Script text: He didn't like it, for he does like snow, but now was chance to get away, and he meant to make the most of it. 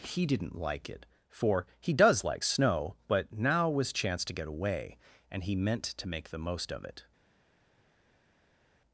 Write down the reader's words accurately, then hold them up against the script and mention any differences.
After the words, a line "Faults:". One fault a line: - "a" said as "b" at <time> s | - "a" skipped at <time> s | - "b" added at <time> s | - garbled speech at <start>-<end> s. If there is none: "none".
He didn't like it, for he does like snow, but now was chance to get away, and he meant to make the most of it.
Faults:
none